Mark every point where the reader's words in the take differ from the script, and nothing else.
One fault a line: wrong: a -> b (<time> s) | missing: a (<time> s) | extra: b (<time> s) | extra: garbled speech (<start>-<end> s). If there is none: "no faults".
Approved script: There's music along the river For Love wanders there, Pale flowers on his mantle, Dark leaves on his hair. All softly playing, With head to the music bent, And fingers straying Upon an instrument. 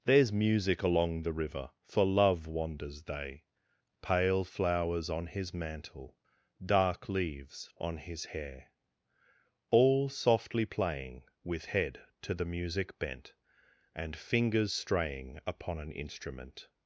wrong: there -> they (3.0 s)